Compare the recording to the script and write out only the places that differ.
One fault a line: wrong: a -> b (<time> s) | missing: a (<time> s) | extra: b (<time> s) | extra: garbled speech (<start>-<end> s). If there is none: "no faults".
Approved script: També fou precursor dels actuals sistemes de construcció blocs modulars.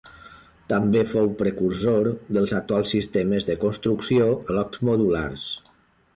no faults